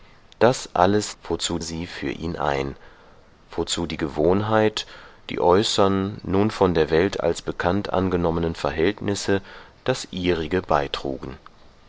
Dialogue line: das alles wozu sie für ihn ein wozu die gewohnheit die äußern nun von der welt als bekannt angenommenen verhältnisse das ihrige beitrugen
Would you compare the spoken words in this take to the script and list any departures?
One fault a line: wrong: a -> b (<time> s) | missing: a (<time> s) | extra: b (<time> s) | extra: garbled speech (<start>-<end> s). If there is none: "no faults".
no faults